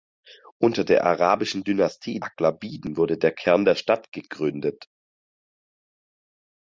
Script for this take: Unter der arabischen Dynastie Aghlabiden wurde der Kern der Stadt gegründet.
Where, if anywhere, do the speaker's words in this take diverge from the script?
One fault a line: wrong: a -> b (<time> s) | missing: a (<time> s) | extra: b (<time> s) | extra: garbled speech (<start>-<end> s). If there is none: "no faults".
no faults